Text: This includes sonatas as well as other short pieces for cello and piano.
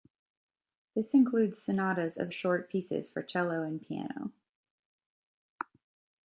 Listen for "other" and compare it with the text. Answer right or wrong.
wrong